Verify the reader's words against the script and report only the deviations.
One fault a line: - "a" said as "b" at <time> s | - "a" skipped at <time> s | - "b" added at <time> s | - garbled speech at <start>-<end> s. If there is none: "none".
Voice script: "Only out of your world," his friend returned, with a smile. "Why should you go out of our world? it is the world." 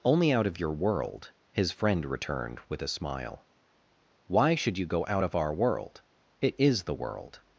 none